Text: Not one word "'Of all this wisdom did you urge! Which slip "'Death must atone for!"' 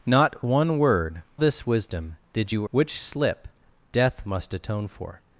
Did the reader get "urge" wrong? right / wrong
wrong